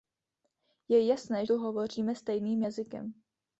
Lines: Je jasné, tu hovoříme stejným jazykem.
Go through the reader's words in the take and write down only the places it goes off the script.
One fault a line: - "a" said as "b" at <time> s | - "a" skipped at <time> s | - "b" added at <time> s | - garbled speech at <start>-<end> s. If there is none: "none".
none